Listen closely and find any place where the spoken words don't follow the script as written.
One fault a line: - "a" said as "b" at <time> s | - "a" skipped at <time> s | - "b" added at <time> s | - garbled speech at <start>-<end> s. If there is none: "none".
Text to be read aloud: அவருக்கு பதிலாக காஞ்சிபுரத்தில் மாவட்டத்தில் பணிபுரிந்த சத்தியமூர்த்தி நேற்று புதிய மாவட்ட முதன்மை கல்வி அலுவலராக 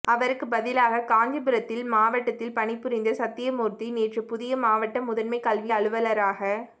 none